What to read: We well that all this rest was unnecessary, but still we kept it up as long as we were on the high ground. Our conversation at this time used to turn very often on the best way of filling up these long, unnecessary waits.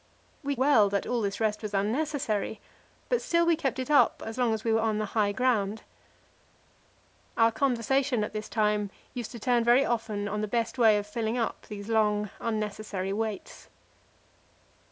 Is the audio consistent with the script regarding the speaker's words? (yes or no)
yes